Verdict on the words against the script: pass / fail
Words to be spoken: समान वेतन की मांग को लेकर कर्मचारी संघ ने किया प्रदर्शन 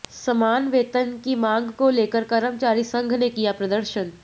pass